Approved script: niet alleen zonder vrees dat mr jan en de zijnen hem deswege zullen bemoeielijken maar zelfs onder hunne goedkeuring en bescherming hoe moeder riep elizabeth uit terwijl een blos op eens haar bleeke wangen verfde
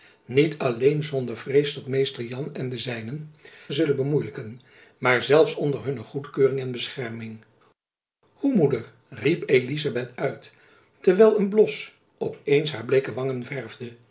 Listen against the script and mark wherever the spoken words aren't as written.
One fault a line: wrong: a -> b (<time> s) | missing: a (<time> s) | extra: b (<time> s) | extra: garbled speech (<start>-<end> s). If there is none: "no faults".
missing: hem deswege (3.3 s)